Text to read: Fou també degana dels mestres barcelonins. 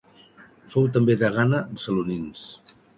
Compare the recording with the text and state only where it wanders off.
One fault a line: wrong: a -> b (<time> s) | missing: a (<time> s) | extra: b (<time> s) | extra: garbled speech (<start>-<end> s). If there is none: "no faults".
missing: dels mestres (1.6 s)